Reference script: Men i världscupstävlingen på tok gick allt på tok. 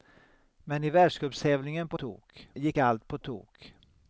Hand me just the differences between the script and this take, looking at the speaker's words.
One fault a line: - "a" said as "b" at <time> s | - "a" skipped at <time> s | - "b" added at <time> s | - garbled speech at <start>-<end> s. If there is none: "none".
none